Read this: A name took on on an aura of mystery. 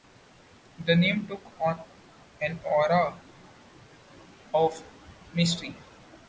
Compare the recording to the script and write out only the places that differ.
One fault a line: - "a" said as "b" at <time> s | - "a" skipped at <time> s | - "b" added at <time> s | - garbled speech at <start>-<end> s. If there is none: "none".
- "A" said as "The" at 0.8 s
- "on" skipped at 1.8 s